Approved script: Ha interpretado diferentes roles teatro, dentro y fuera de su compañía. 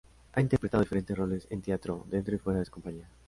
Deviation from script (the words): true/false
true